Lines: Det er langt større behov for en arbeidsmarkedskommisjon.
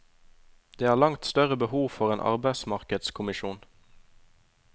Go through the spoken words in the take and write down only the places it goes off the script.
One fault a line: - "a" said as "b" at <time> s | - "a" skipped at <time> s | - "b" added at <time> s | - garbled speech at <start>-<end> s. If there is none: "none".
none